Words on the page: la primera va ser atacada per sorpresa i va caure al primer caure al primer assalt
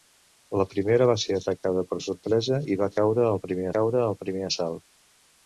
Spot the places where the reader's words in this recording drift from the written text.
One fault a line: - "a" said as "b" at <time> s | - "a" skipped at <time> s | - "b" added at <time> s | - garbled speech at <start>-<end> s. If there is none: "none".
none